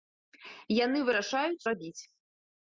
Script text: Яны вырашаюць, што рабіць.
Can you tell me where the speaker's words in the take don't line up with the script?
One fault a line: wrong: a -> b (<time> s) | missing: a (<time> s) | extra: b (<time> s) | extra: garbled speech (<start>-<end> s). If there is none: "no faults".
missing: што (1.7 s)